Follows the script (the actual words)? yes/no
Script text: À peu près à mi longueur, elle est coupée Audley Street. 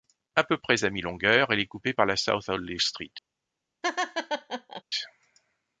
no